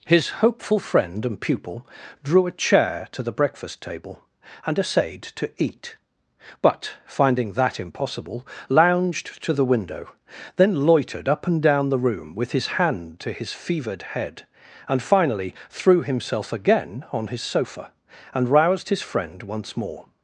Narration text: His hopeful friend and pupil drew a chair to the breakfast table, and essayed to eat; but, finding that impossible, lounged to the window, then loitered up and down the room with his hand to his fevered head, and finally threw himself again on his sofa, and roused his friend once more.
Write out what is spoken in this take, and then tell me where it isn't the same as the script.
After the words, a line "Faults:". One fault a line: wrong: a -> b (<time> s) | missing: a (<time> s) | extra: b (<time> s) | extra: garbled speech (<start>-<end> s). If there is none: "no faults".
His hopeful friend and pupil drew a chair to the breakfast table, and essayed to eat; but, finding that impossible, lounged to the window, then loitered up and down the room with his hand to his fevered head, and finally threw himself again on his sofa, and roused his friend once more.
Faults:
no faults